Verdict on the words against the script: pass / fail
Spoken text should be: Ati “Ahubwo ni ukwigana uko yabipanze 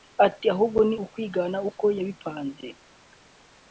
pass